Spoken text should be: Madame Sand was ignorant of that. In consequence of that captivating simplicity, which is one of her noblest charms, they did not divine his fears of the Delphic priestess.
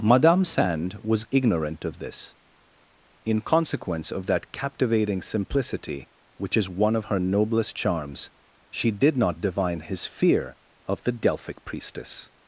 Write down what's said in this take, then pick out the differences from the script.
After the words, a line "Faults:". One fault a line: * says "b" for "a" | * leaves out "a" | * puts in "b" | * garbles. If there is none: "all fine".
Madame Sand was ignorant of this. In consequence of that captivating simplicity, which is one of her noblest charms, she did not divine his fear of the Delphic priestess.
Faults:
* says "this" for "that"
* says "she" for "they"
* says "fear" for "fears"